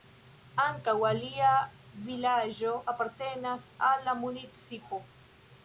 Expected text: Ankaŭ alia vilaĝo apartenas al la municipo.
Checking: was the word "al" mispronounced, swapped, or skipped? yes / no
no